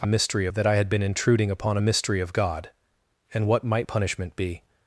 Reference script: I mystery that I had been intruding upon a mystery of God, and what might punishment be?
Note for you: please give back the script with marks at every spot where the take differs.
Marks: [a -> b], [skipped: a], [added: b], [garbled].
I mystery that I had been intruding upon a mystery of God, and what might punishment be?